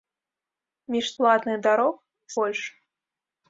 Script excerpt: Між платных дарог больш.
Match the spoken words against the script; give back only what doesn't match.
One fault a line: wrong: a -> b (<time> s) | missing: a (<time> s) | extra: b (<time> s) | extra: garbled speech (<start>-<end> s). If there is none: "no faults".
no faults